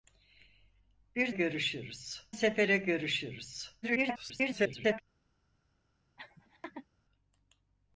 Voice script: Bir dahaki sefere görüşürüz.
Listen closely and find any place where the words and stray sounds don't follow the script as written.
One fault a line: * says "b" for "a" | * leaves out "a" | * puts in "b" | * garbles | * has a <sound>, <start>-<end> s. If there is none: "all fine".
* says "görüşürüz" for "dahaki"
* garbles
* has a laugh, 6.2-6.9 s